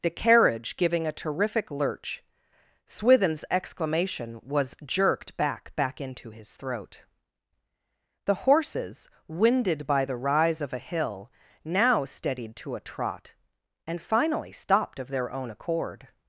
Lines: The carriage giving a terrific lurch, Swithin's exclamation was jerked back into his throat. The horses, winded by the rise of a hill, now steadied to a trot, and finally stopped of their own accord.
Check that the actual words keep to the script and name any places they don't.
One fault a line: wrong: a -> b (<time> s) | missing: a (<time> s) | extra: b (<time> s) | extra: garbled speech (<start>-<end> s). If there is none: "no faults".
extra: back (5.8 s)